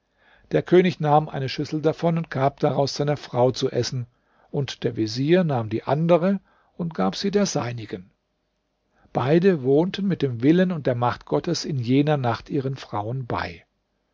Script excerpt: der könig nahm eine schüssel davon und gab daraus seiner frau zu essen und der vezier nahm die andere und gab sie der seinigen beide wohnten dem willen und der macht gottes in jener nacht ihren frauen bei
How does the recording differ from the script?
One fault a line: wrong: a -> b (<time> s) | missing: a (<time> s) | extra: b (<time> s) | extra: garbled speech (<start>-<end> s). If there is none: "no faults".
extra: mit (10.1 s)